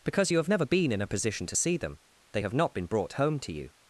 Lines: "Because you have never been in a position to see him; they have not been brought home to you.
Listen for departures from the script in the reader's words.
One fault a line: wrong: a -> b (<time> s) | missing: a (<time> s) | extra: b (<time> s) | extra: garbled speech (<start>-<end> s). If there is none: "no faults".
wrong: him -> them (1.8 s)